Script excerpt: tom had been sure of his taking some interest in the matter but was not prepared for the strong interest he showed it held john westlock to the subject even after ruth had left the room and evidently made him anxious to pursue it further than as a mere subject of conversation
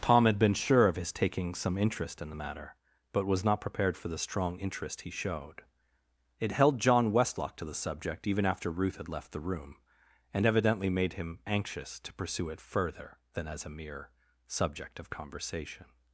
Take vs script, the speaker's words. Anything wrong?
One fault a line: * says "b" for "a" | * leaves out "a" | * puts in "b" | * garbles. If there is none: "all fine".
all fine